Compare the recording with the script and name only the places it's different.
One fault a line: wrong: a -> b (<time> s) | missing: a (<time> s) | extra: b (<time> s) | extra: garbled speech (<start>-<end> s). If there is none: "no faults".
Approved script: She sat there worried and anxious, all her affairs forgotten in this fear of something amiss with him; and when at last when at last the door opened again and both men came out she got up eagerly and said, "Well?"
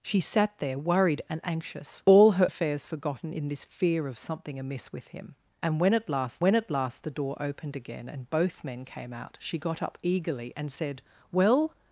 no faults